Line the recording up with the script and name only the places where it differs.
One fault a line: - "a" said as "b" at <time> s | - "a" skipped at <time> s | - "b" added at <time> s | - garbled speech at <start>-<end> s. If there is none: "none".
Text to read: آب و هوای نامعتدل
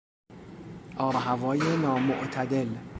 none